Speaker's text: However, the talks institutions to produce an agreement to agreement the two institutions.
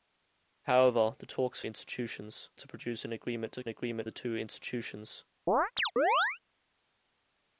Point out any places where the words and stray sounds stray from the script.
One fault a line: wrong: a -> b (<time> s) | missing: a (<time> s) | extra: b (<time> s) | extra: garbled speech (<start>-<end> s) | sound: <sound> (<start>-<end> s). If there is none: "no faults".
sound: chirp (5.5-6.4 s)